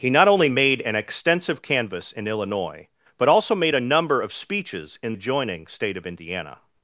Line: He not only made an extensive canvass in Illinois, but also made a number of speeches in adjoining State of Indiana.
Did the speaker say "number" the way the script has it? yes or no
yes